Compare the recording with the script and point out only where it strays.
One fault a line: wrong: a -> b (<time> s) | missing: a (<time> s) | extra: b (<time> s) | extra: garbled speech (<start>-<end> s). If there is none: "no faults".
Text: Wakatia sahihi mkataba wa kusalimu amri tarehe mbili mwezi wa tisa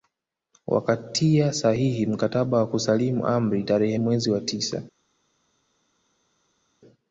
missing: mbili (4.0 s)